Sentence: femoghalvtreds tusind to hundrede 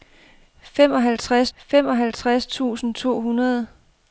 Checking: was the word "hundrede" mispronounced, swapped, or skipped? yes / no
no